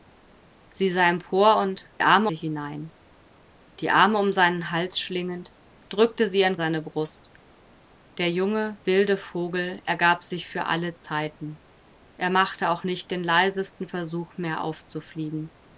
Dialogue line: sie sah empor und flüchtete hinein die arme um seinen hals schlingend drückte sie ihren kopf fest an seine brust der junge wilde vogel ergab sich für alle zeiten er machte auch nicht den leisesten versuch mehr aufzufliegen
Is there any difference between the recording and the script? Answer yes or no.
yes